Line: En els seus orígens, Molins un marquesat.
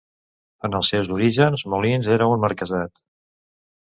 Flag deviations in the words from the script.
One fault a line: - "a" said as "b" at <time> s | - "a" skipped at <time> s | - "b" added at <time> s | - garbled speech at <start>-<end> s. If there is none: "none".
- "era" added at 2.1 s